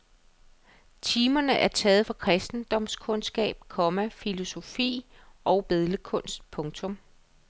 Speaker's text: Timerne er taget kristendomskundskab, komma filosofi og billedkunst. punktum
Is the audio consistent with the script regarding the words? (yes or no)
no